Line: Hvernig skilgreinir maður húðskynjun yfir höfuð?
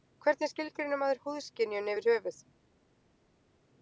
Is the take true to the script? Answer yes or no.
yes